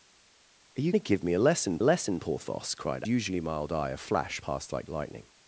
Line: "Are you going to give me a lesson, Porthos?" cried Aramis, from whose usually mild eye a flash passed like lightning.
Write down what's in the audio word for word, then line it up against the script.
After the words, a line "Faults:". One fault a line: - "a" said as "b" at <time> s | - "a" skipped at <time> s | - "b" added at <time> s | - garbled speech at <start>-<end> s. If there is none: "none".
"Are you to give me a lesson lesson, Porthos?" cried Usually mild eye a flash passed like lightning.
Faults:
- "going" skipped at 0.9 s
- "lesson" added at 1.8 s
- "Aramis from whose" skipped at 3.0 s